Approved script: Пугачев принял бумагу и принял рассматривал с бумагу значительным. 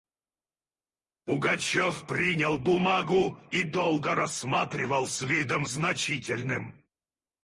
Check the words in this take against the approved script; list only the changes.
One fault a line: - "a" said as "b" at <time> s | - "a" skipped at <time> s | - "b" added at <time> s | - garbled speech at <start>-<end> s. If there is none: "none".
- "принял" said as "долго" at 3.6 s
- "бумагу" said as "видом" at 5.2 s